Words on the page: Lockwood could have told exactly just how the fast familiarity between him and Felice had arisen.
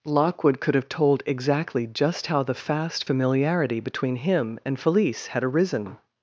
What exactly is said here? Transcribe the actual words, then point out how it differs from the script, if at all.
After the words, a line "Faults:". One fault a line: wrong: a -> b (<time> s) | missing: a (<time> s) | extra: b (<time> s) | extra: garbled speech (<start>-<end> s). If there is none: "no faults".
Lockwood could have told exactly just how the fast familiarity between him and Felice had arisen.
Faults:
no faults